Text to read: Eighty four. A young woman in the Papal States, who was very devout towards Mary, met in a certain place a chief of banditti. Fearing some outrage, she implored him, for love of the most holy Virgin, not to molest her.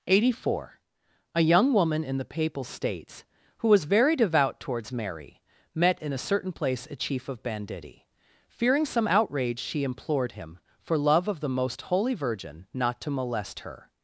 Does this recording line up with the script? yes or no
yes